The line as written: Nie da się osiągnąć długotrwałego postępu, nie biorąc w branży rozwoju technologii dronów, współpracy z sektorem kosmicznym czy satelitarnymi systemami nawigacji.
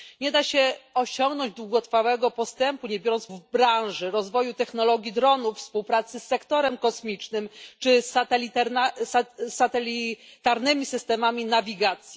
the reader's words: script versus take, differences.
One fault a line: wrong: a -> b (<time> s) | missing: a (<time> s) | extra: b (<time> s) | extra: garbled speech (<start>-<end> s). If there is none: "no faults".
no faults